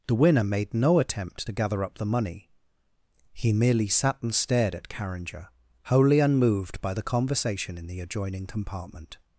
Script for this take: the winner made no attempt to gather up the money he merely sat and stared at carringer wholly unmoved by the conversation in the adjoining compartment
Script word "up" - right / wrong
right